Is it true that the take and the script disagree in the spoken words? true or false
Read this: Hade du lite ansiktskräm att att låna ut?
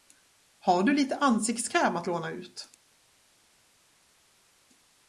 true